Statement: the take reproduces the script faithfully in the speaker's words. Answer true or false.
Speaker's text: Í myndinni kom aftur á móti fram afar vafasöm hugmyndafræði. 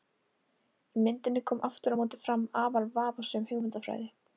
true